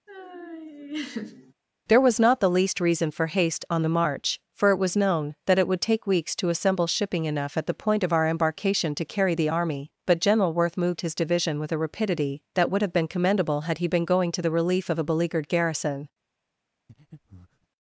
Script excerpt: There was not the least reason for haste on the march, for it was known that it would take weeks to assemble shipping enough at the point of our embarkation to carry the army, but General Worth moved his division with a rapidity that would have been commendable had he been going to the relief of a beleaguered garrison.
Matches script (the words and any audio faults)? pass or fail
fail